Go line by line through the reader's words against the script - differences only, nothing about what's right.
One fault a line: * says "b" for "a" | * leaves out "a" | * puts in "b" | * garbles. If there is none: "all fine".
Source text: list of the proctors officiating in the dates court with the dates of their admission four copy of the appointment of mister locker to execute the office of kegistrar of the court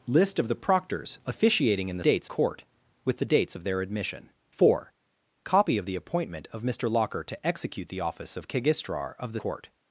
all fine